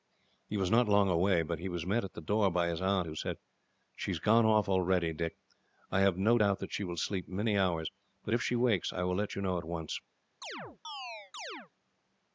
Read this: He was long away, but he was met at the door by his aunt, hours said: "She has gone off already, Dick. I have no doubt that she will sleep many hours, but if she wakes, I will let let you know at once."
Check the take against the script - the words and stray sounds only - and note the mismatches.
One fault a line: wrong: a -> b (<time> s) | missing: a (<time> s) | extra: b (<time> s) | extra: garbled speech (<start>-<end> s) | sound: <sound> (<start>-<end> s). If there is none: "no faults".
extra: not (0.7 s)
wrong: hours -> who (3.0 s)
missing: let (9.4 s)
sound: chirp (10.4-11.7 s)